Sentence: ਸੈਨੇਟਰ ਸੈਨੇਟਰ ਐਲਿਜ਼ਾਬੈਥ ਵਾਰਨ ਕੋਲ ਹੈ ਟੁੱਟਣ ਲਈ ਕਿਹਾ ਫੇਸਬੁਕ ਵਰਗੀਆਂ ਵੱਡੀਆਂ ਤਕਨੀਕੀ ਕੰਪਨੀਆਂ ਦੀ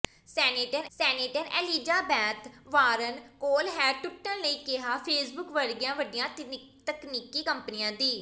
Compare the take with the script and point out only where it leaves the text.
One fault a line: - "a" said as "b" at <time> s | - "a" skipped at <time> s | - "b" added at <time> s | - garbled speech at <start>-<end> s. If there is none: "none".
none